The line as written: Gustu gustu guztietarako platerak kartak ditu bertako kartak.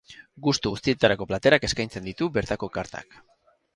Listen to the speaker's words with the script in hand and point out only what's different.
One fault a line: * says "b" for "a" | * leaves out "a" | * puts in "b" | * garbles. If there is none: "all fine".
* leaves out "gustu"
* says "eskaintzen" for "kartak"